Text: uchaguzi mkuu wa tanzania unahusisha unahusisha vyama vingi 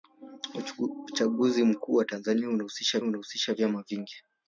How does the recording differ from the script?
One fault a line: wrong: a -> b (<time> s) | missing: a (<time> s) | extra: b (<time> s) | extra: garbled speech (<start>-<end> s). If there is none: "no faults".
no faults